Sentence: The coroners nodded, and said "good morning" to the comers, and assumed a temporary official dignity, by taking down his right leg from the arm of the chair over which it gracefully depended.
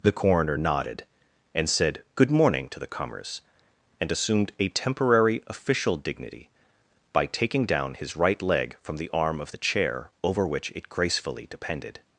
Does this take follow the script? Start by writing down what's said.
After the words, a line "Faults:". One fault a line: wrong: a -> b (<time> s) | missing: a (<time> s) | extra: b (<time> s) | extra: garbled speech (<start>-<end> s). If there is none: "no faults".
The coroner nodded, and said "good morning" to the comers, and assumed a temporary official dignity, by taking down his right leg from the arm of the chair over which it gracefully depended.
Faults:
wrong: coroners -> coroner (0.1 s)